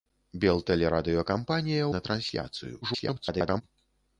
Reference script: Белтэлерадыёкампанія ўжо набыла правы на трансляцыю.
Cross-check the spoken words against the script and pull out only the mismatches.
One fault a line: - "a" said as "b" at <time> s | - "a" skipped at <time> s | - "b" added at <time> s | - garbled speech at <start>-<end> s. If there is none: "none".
- "ўжо набыла правы" skipped at 1.9 s
- garbled speech at 2.8-3.6 s